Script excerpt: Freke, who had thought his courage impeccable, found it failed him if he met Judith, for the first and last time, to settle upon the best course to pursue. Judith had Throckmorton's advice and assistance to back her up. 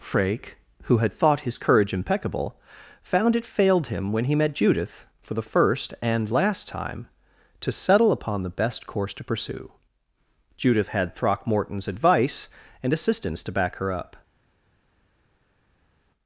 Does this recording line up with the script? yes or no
no